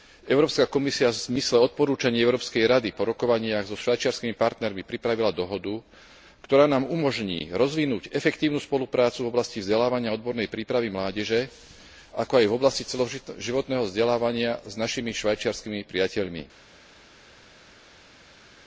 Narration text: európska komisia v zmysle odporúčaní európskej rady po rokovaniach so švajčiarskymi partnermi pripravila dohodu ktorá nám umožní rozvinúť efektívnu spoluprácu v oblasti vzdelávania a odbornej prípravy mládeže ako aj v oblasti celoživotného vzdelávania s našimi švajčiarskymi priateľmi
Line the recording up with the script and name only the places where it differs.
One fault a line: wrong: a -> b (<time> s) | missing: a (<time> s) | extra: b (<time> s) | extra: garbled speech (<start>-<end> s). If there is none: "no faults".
no faults